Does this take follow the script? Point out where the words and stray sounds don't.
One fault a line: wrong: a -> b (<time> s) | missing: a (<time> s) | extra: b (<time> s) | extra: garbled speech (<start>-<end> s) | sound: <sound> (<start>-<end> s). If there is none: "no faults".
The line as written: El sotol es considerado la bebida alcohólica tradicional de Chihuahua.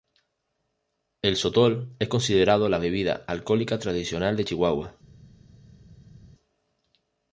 no faults